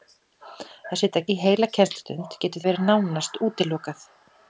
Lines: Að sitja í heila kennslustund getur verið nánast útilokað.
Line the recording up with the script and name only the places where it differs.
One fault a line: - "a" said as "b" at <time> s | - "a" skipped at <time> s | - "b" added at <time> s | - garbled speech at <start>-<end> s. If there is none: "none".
none